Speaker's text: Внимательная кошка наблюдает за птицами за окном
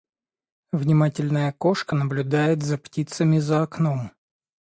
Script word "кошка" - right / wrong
right